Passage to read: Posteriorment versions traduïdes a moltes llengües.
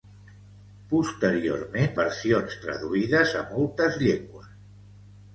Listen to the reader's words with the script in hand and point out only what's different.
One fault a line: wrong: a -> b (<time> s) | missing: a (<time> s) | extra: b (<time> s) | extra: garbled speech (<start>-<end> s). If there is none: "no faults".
no faults